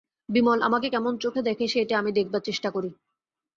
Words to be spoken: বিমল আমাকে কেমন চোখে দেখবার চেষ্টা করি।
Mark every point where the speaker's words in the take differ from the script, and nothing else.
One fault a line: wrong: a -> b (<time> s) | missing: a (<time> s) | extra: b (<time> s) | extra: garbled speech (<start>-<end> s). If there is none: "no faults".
extra: দেখে সেইটে আমি (1.4 s)